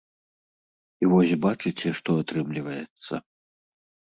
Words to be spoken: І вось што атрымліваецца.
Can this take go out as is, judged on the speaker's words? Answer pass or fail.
fail